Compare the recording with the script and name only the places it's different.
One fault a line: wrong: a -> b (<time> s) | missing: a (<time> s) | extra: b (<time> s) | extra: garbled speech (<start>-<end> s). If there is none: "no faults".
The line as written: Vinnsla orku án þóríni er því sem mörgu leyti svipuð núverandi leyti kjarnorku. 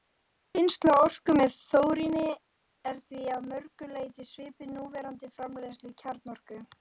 wrong: án -> með (1.4 s)
wrong: sem -> að (3.4 s)
wrong: leyti -> framleiðslu (5.4 s)